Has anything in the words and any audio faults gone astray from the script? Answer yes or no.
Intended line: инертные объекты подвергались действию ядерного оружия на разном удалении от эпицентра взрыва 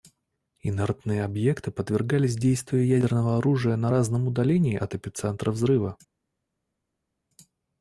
no